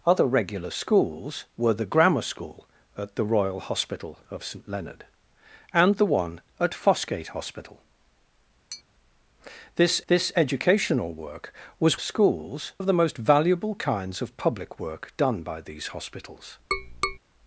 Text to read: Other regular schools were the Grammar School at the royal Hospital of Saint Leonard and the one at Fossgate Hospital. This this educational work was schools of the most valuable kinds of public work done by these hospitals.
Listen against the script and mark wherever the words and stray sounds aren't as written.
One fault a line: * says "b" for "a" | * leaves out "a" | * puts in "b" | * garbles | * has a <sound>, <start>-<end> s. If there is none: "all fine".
* has a tap, 8.7-8.8 s
* has a tap, 16.7-17.2 s